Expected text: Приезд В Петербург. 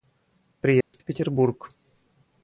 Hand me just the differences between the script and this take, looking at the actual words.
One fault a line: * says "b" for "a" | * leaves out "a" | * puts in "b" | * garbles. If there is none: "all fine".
all fine